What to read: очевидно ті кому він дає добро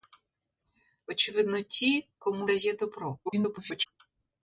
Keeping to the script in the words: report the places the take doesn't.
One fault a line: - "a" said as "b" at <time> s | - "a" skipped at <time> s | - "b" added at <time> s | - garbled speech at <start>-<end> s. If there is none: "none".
- "він" skipped at 2.5 s
- garbled speech at 3.3-3.9 s